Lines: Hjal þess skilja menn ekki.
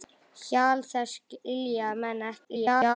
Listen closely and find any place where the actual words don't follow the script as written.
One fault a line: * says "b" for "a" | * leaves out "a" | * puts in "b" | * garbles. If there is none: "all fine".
* garbles